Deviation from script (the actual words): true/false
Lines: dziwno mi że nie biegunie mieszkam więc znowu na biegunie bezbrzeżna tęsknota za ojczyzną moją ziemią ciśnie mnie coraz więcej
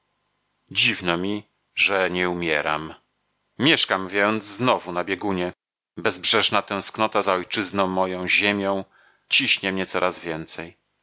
true